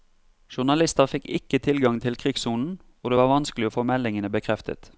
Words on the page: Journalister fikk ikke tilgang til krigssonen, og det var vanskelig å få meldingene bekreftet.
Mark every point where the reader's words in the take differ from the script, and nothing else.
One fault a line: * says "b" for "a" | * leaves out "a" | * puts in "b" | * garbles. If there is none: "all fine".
all fine